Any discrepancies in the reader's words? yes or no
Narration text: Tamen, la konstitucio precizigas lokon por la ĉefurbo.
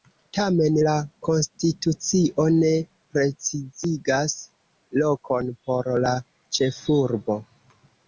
yes